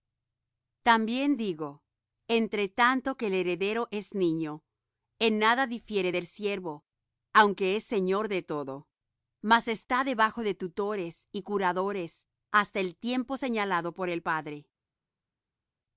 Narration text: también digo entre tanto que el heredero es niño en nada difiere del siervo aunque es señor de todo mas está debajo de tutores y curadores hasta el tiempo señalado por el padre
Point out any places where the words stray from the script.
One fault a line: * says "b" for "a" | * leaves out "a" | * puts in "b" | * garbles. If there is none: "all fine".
all fine